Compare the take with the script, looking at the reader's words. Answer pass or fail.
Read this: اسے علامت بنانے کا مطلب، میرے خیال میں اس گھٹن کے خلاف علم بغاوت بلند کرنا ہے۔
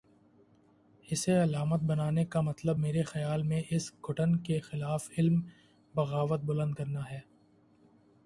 pass